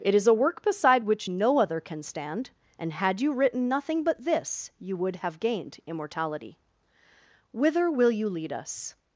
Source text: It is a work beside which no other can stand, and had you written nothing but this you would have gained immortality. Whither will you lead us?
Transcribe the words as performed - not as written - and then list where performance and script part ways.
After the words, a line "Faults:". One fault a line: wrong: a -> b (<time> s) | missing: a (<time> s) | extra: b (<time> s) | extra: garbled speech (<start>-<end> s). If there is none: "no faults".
It is a work beside which no other can stand, and had you written nothing but this you would have gained immortality. Whither will you lead us?
Faults:
no faults